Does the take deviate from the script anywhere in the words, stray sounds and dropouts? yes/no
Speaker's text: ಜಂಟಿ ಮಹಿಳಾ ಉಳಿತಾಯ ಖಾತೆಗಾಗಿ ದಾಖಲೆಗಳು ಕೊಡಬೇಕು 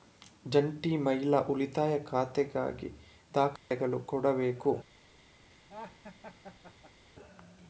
yes